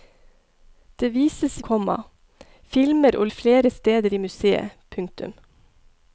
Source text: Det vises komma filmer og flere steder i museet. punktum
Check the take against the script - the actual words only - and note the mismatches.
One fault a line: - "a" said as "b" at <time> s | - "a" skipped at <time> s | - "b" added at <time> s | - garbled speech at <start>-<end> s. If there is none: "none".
none